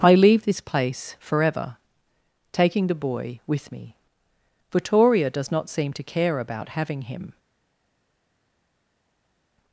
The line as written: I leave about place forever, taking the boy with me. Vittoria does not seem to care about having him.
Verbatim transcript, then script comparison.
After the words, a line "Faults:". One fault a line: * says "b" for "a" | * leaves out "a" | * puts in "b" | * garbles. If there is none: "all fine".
I leave this place forever, taking the boy with me. Vittoria does not seem to care about having him.
Faults:
* says "this" for "about"